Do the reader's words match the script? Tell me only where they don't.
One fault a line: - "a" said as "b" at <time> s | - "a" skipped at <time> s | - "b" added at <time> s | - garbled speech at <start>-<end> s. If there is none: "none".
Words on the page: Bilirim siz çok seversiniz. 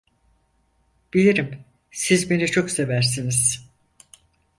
- "beni" added at 2.3 s